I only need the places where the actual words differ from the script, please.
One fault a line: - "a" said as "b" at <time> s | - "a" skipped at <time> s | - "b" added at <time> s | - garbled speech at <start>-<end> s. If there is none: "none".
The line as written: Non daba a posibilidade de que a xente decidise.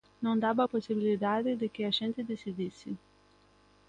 none